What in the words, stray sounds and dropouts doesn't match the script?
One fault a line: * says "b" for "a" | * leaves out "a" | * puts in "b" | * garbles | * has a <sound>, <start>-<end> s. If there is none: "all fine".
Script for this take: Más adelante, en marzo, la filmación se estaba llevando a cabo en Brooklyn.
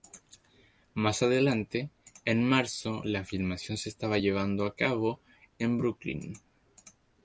all fine